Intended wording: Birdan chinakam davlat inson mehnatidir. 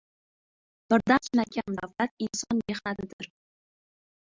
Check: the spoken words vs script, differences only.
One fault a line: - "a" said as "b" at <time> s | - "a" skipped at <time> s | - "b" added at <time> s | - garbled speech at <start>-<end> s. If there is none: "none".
none